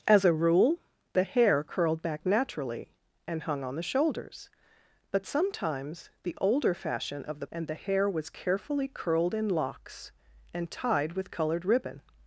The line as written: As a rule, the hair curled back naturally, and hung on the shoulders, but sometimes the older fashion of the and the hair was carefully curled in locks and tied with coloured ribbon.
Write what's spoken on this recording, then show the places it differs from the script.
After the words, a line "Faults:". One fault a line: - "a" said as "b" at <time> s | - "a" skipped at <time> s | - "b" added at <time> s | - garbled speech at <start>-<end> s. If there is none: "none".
As a rule, the hair curled back naturally, and hung on the shoulders, but sometimes the older fashion of the and the hair was carefully curled in locks and tied with coloured ribbon.
Faults:
none